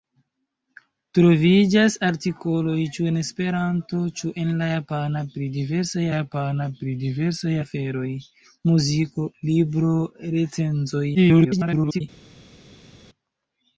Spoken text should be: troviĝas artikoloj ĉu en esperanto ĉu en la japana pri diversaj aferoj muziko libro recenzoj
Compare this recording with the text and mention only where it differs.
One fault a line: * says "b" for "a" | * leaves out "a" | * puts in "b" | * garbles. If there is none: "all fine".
* puts in "japana pri diversaj"
* garbles